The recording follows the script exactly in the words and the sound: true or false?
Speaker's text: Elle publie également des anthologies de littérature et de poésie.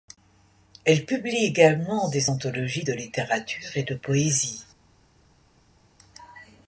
true